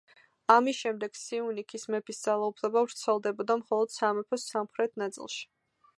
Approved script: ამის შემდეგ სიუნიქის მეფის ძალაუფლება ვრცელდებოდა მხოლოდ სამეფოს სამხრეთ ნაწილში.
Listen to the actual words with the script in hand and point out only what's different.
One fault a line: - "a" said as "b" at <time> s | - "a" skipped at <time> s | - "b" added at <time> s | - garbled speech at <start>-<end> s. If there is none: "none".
none